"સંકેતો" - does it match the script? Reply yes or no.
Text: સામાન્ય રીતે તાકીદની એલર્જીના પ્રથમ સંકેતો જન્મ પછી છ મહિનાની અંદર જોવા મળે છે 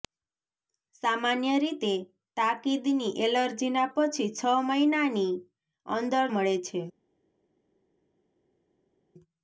no